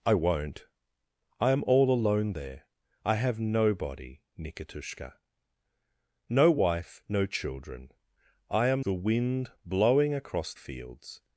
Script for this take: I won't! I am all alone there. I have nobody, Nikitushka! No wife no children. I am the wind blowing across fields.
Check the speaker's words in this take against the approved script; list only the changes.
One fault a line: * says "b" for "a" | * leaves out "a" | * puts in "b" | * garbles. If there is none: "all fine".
all fine